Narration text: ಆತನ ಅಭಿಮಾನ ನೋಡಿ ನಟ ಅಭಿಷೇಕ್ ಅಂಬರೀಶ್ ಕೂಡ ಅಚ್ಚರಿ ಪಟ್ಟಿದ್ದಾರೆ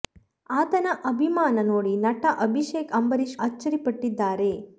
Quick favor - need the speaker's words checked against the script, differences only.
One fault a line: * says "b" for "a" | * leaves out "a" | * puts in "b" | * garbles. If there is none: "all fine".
* leaves out "ಕೂಡ"